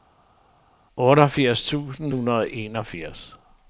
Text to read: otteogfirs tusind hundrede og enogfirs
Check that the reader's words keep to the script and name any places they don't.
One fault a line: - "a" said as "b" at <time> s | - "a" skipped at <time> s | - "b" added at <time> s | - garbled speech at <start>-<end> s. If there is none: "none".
none